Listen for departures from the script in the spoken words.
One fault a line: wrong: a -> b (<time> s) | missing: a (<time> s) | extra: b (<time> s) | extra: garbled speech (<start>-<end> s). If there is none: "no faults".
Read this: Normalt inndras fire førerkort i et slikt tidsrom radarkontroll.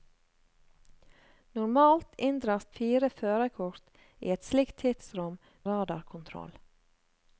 no faults